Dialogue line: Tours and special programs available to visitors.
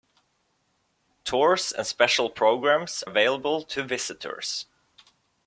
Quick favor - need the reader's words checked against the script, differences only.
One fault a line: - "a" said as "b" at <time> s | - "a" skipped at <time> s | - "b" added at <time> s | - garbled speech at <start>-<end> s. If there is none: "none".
none